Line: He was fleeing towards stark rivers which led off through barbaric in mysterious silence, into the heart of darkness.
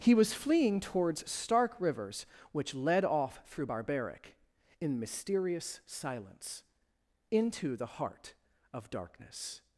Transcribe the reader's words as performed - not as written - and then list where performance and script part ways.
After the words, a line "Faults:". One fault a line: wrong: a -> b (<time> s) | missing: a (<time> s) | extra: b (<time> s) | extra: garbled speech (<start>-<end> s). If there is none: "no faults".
He was fleeing towards stark rivers which led off through barbaric in mysterious silence, into the heart of darkness.
Faults:
no faults